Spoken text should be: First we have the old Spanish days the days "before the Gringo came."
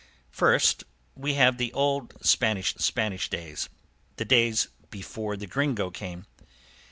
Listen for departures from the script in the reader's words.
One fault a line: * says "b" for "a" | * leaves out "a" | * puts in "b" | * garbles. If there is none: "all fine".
* puts in "Spanish"